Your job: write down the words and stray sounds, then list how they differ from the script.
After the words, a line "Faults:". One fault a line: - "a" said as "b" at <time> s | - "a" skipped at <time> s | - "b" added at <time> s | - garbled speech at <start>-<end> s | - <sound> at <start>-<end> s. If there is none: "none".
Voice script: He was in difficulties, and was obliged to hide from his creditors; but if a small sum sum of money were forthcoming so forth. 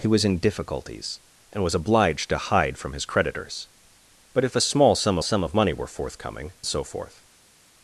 He was in difficulties, and was obliged to hide from his creditors; but if a small sum sum of money were forthcoming so forth.
Faults:
none